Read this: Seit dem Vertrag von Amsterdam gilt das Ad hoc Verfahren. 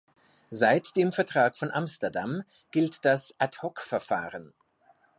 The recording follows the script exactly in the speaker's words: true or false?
true